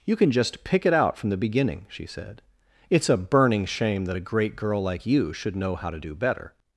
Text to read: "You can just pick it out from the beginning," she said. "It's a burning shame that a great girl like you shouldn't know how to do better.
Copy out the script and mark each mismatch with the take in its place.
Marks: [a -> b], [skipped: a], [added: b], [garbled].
"You can just pick it out from the beginning," she said. "It's a burning shame that a great girl like you [shouldn't -> should] know how to do better.